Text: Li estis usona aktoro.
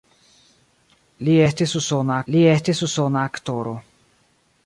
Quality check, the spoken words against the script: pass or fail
fail